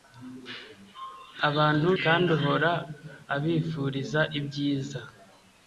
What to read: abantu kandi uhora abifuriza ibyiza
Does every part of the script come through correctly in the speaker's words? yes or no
yes